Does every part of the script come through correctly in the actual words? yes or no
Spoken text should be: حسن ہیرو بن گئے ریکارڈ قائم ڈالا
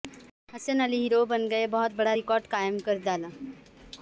no